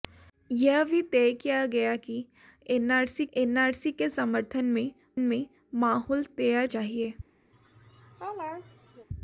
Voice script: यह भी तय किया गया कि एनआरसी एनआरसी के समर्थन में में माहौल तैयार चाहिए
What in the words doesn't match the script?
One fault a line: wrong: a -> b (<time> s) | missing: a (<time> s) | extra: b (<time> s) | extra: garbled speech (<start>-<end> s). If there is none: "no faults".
no faults